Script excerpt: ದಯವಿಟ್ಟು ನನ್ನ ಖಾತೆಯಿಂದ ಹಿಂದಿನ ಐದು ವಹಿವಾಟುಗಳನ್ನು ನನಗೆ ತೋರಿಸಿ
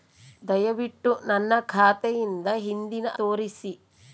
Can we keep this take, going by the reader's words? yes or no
no